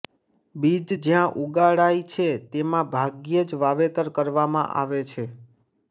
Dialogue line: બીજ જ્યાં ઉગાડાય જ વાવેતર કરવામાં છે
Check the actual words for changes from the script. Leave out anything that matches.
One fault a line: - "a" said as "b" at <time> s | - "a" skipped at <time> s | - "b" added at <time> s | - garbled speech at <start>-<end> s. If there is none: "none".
- "છે તેમાં ભાગ્યે" added at 2.1 s
- "આવે" added at 4.7 s